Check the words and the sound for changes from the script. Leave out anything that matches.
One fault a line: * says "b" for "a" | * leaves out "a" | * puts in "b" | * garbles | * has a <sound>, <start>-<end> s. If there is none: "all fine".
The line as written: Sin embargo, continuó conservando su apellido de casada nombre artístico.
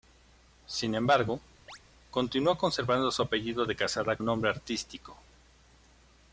* has a chirp, 1.7-1.8 s